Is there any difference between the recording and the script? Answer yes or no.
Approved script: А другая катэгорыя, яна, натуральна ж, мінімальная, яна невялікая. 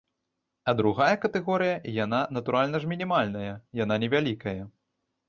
no